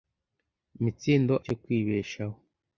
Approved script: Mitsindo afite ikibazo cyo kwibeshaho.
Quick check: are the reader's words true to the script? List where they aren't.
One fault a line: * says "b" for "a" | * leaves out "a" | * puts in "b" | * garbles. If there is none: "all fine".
* leaves out "afite ikibazo"